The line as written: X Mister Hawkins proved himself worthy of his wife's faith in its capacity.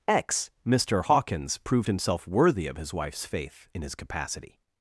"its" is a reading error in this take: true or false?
true